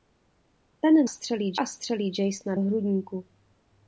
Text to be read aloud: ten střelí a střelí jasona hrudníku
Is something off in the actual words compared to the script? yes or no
no